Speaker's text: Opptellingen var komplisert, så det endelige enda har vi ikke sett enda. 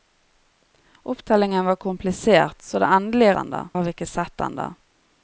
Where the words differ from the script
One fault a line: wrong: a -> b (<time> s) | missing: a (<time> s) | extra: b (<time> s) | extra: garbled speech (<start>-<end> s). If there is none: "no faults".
no faults